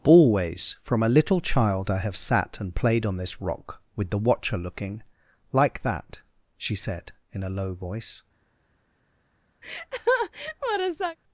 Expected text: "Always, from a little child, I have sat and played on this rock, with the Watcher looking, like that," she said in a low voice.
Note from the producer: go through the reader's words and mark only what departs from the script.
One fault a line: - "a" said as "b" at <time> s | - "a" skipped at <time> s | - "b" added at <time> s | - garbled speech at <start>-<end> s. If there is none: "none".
none